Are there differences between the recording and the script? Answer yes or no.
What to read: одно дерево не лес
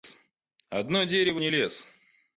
no